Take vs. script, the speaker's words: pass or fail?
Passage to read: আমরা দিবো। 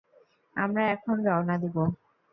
fail